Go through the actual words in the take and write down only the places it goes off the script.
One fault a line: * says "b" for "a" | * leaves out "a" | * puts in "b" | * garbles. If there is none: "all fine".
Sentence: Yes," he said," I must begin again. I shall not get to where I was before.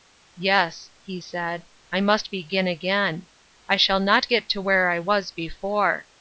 all fine